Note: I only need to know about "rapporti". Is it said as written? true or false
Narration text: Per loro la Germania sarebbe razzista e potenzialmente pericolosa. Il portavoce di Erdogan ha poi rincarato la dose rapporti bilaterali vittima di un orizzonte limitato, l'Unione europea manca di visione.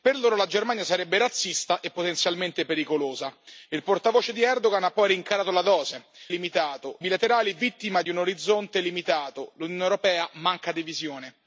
false